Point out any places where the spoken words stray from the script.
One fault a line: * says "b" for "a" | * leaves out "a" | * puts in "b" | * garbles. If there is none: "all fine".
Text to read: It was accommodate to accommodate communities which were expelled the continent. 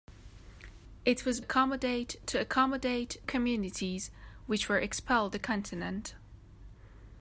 all fine